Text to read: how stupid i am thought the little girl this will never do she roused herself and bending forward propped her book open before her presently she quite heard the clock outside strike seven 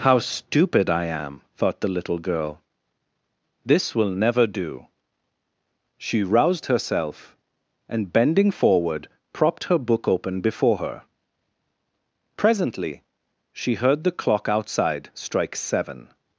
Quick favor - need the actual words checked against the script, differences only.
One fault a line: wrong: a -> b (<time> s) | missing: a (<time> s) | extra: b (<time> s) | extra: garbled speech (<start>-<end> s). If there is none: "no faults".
missing: quite (13.7 s)